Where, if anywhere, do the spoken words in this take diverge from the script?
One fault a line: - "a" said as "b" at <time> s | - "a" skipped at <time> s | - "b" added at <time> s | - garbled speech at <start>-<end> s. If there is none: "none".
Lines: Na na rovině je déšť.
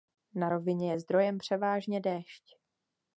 - "na" skipped at 0.5 s
- "zdrojem převážně" added at 1.0 s